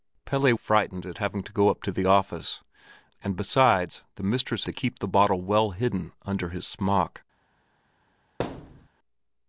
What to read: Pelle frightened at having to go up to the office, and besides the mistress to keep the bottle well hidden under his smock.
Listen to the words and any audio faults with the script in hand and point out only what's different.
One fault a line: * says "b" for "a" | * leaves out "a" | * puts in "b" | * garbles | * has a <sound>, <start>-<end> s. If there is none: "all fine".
* has a thud, 8.4-8.9 s